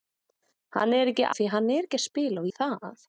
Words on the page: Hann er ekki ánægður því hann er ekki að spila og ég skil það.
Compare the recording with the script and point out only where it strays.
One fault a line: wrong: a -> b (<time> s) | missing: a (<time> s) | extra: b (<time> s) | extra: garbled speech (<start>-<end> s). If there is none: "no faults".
missing: ánægður (1.3 s)
missing: ég skil (2.5 s)